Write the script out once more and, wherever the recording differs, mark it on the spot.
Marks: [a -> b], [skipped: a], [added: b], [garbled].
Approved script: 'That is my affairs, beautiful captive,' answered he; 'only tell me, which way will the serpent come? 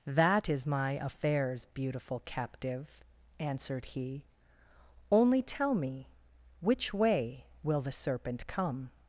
'That is my affairs, beautiful captive,' answered he; 'only tell me, which way will the serpent come?